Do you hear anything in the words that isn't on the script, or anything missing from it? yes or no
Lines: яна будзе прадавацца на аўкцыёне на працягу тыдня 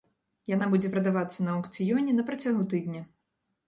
no